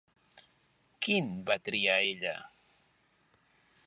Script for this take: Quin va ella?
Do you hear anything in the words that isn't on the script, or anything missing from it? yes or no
yes